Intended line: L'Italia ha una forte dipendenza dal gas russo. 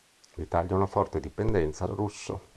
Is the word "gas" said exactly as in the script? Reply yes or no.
no